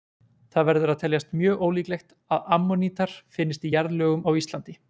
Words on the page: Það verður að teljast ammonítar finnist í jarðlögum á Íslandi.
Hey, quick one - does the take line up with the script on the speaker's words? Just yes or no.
no